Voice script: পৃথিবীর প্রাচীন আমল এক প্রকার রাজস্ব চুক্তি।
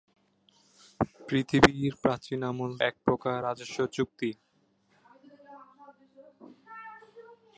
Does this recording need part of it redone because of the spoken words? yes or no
no